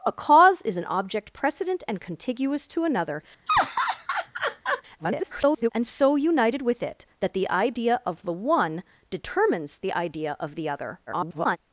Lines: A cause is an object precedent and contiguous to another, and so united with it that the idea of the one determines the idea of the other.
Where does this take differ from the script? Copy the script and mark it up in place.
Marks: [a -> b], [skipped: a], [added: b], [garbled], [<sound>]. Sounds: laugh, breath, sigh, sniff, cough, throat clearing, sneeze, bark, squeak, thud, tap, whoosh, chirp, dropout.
A cause is an object precedent and contiguous to another, [laugh] [garbled] and so united with it that the idea of the one determines the idea of the other. [garbled]